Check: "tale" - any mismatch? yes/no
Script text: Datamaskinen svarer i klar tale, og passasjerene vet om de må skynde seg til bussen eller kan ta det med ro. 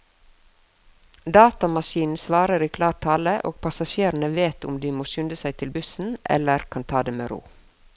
no